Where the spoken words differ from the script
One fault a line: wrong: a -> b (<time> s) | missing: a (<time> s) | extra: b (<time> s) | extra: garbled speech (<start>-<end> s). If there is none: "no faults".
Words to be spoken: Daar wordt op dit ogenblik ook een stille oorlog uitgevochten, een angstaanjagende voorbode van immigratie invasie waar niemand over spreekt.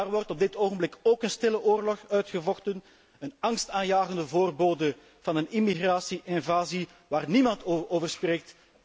extra: een (5.3 s)